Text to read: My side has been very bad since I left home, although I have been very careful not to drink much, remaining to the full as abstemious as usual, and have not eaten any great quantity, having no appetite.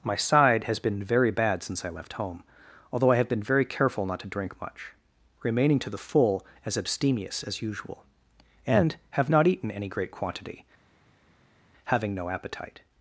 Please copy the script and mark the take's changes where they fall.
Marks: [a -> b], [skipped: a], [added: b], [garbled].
My side has been very bad since I left home, although I have been very careful not to drink much, remaining to the full as abstemious as usual, and have not eaten any great quantity, having no appetite.